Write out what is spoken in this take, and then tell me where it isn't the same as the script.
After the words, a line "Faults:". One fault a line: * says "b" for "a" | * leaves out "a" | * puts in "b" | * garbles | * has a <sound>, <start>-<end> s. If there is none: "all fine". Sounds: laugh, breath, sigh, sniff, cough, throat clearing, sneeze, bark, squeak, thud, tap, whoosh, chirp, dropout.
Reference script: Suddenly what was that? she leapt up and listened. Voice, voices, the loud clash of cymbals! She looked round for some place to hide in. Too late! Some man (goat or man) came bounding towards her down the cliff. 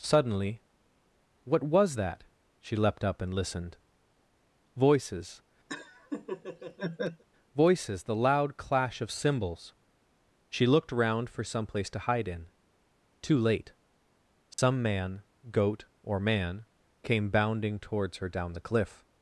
Suddenly what was that? she leapt up and listened. Voices, voices, the loud clash of cymbals! She looked round for some place to hide in. Too late! Some man (goat or man) came bounding towards her down the cliff.
Faults:
* says "Voices" for "Voice"
* has a laugh, 5.7-7.2 s
* has a dropout, 14.5-14.6 s